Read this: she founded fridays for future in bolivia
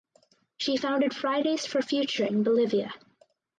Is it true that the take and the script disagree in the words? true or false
false